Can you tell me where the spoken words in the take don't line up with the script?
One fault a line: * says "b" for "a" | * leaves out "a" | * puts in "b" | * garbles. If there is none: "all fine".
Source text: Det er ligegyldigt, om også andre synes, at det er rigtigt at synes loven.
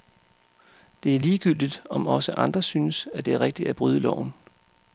* says "bryde" for "synes"